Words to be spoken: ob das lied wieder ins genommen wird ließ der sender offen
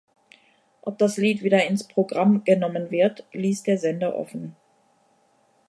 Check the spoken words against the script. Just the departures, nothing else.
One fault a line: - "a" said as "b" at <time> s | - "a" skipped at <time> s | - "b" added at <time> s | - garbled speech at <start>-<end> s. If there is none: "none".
- "programm" added at 1.8 s